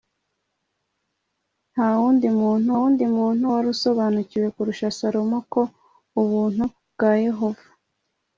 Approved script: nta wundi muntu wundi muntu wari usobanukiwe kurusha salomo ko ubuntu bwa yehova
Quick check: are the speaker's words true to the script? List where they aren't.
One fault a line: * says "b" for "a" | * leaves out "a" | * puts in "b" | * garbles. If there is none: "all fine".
all fine